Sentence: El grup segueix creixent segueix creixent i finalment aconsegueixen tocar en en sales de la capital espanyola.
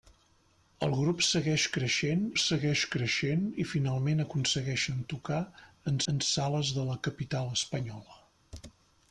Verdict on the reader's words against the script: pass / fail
pass